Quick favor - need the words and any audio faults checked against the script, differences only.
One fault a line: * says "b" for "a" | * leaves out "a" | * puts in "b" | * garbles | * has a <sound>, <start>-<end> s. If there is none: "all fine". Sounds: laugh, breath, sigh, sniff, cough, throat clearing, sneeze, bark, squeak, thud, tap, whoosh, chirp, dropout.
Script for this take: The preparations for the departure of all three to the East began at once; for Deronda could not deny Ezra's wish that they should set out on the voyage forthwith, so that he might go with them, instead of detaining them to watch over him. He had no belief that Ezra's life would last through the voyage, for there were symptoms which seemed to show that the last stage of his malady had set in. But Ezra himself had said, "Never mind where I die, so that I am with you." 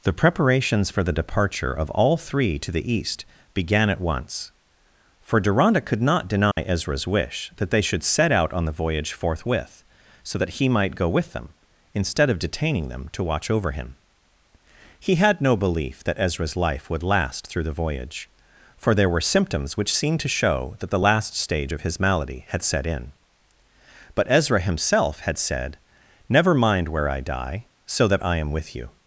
* has a dropout, 6.5-6.6 s